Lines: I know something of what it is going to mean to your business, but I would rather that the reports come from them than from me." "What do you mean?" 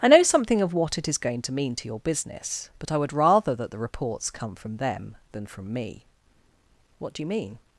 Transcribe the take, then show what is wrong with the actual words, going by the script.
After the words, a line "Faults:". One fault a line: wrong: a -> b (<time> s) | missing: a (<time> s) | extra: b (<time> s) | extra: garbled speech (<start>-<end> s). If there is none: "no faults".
I know something of what it is going to mean to your business, but I would rather that the reports come from them than from me." "What do you mean?"
Faults:
no faults